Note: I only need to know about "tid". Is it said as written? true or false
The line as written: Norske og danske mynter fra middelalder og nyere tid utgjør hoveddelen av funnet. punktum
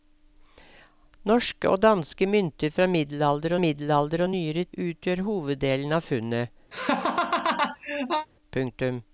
false